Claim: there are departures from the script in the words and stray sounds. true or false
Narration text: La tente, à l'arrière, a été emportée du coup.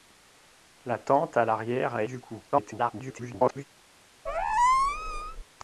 true